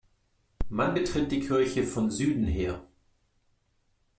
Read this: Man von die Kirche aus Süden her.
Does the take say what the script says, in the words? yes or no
no